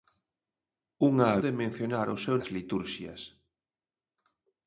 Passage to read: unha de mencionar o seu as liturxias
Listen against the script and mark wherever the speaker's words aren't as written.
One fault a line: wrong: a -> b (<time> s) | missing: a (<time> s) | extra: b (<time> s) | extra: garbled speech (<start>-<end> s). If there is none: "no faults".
no faults